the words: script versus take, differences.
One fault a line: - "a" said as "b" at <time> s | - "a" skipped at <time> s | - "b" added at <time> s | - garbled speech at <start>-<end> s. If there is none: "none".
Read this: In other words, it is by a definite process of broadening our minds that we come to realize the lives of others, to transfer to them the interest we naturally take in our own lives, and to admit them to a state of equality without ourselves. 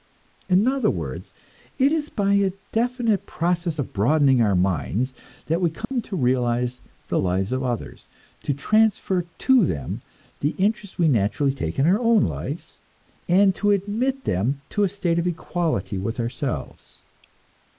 - "without" said as "with" at 16.0 s